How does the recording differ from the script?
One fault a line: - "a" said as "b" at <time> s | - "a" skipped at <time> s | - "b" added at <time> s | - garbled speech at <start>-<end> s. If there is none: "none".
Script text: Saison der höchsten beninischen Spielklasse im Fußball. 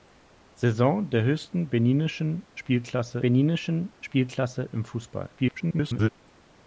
- "beninischen Spielklasse" added at 3.2 s
- garbled speech at 5.4-6.1 s